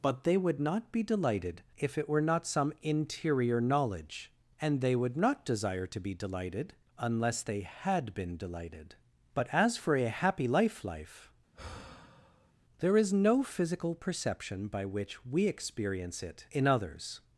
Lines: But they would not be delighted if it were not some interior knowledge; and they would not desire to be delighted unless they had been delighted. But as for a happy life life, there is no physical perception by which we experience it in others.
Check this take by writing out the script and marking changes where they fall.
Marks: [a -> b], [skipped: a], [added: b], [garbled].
But they would not be delighted if it were not some interior knowledge; and they would not desire to be delighted unless they had been delighted. But as for a happy life life, there is no physical perception by which we experience it in others.